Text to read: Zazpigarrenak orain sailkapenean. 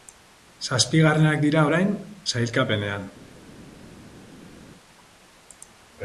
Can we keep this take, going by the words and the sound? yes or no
no